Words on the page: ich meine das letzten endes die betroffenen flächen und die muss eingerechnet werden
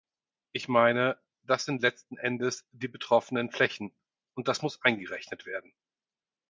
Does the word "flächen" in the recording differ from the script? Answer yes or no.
no